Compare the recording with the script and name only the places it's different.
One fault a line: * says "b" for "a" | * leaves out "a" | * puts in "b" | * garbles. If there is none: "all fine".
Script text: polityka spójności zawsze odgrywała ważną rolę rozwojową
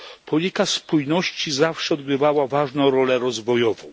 all fine